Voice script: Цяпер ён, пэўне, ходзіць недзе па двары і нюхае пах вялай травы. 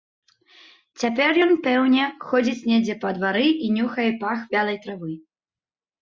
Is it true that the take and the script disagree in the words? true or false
false